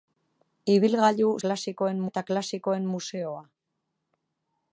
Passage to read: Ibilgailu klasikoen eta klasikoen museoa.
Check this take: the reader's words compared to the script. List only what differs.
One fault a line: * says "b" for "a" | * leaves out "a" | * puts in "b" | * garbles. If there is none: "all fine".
all fine